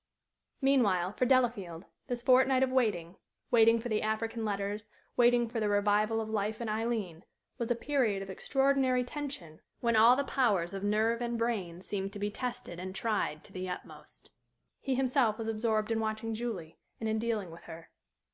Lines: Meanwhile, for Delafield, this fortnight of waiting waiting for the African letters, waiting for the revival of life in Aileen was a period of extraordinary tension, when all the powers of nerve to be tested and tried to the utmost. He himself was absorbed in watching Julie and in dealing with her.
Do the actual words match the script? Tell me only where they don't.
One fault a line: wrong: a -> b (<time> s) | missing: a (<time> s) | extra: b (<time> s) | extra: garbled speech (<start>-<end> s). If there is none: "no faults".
extra: and brain seemed (11.2 s)